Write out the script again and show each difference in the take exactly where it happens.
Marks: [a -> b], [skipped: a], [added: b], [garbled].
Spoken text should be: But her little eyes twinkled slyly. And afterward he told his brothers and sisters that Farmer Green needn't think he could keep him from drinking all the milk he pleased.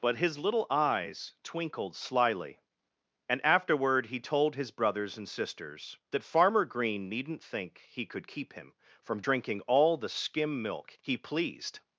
But [her -> his] little eyes twinkled slyly. And afterward he told his brothers and sisters that Farmer Green needn't think he could keep him from drinking all the [added: skim] milk he pleased.